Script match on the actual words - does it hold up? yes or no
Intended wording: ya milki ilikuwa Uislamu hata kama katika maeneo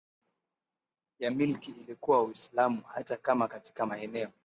yes